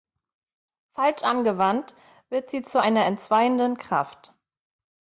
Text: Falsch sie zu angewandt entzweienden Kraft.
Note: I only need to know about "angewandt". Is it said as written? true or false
false